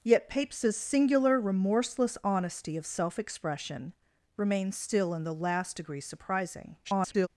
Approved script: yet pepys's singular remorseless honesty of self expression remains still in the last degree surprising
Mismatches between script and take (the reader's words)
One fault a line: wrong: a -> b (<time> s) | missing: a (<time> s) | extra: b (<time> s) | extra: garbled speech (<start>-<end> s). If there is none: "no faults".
extra: garbled speech (6.8-7.3 s)